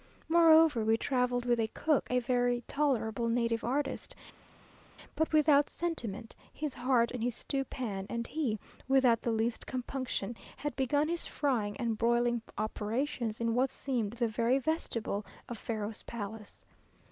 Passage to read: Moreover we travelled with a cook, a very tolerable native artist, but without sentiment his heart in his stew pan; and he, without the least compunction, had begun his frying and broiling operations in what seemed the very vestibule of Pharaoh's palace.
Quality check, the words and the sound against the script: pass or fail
pass